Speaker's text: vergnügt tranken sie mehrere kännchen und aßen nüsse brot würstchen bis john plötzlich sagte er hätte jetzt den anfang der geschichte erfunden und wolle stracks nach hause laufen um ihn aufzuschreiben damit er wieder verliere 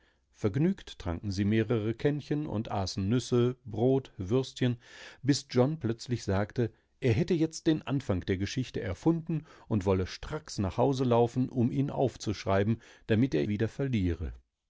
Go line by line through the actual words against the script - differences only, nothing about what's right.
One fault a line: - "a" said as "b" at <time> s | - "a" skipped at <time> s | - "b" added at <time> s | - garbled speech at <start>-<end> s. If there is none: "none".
none